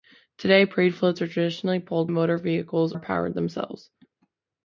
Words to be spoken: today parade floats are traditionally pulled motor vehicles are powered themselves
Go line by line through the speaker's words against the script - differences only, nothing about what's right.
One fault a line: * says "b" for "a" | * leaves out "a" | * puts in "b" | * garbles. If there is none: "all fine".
all fine